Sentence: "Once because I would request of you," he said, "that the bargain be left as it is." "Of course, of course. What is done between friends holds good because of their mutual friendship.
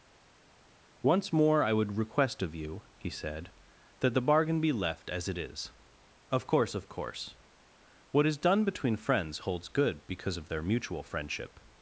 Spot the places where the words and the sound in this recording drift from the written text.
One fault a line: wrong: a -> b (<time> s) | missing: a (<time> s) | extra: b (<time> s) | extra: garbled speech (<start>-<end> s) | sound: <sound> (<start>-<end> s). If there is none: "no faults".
wrong: because -> more (1.3 s)